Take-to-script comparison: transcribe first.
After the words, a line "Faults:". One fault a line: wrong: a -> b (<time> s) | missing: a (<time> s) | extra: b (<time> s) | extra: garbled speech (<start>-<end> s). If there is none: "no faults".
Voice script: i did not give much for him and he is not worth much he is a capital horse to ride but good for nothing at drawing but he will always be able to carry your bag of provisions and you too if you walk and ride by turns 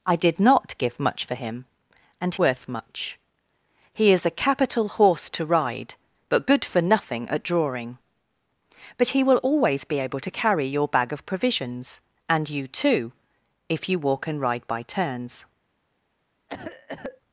i did not give much for him and worth much he is a capital horse to ride but good for nothing at drawing but he will always be able to carry your bag of provisions and you too if you walk and ride by turns
Faults:
missing: he is not (2.4 s)